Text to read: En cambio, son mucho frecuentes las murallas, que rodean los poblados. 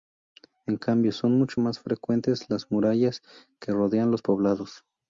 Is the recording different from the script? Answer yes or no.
yes